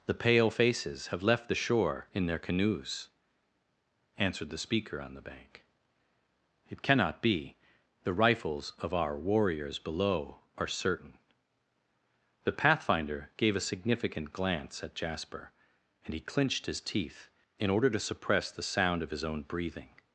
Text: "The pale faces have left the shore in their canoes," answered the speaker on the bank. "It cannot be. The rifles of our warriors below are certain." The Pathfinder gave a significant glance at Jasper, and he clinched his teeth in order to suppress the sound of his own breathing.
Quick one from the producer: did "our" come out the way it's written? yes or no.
yes